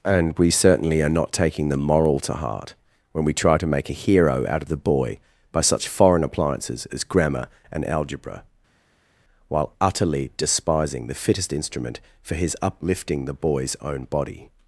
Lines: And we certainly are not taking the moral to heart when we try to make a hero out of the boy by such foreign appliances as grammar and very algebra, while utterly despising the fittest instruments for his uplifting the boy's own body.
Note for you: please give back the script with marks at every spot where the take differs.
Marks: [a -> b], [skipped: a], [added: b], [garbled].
And we certainly are not taking the moral to heart when we try to make a hero out of the boy by such foreign appliances as grammar and [skipped: very] algebra, while utterly despising the fittest [instruments -> instrument] for his uplifting the boy's own body.